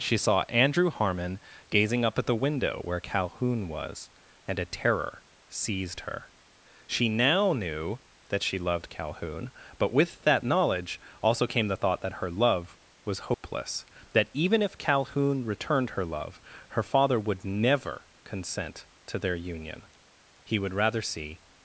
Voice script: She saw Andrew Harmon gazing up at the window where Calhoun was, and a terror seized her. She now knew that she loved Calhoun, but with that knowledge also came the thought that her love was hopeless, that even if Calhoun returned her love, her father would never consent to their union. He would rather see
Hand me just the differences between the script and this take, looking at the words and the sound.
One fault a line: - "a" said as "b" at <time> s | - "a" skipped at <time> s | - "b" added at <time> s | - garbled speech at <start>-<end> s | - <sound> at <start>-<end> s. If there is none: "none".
- dropout at 13.3-13.4 s